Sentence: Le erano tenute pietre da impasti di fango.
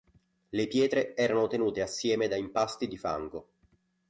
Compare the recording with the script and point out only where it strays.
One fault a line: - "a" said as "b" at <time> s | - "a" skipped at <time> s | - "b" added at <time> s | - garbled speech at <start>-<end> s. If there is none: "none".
- "pietre" added at 0.7 s
- "pietre" said as "assieme" at 1.8 s